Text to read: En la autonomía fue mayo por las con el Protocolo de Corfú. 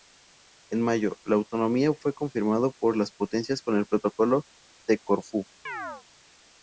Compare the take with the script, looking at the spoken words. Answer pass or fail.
fail